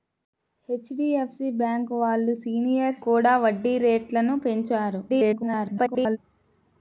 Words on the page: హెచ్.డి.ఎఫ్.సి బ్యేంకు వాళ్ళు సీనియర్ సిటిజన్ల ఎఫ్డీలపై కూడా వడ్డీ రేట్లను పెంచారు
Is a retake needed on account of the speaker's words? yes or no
yes